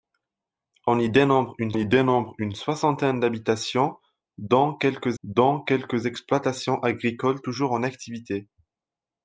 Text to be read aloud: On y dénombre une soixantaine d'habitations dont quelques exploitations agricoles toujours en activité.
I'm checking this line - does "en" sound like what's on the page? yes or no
yes